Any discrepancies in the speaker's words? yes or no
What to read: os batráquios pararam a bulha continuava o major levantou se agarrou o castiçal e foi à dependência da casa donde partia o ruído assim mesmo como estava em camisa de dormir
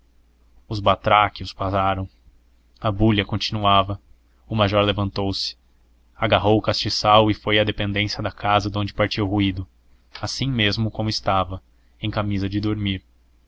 no